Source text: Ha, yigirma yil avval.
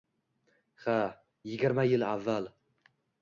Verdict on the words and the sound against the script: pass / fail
pass